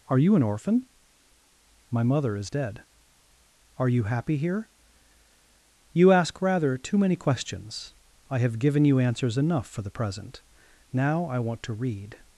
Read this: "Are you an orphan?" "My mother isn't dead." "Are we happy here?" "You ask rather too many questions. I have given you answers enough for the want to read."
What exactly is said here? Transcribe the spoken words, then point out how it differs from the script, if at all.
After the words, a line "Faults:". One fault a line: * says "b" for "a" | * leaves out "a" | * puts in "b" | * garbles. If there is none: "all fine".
"Are you an orphan?" "My mother is dead." "Are you happy here?" "You ask rather too many questions. I have given you answers enough for the present: now I want to read."
Faults:
* says "is" for "isn't"
* says "you" for "we"
* puts in "present now I"